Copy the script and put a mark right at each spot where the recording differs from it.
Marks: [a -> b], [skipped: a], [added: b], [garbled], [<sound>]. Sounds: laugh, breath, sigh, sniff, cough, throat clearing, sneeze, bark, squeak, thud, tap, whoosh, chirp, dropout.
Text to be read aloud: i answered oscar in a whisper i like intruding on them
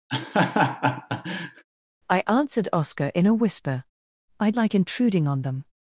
[laugh] i answered oscar in a whisper i like intruding on them